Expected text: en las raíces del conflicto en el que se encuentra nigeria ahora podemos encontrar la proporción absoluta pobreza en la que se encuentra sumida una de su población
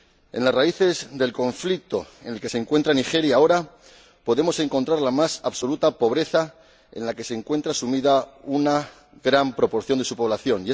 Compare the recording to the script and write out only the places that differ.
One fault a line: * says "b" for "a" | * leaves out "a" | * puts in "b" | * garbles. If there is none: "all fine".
* says "más" for "proporción"
* puts in "gran proporción"